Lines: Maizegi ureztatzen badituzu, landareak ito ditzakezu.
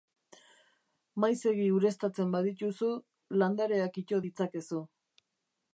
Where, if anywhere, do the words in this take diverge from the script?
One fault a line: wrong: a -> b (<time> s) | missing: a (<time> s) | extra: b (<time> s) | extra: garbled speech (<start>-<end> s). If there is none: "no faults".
no faults